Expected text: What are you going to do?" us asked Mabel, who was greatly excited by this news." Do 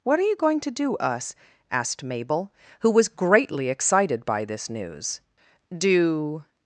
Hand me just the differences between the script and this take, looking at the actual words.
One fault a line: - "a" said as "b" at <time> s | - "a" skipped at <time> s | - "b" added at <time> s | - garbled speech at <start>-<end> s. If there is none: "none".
none